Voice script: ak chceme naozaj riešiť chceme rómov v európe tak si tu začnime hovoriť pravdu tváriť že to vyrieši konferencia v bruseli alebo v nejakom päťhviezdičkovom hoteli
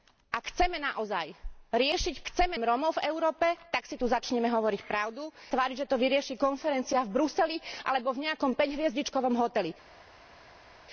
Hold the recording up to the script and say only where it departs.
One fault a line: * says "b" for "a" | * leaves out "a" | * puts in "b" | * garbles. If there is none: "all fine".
all fine